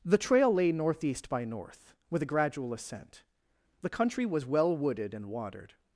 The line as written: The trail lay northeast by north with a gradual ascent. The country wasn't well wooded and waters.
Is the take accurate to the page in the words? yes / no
no